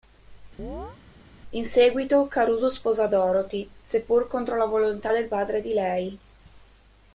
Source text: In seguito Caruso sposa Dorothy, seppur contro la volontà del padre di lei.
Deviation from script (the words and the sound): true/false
true